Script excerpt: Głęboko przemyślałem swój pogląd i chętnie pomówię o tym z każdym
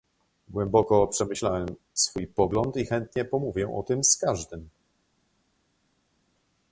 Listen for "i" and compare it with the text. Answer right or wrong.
right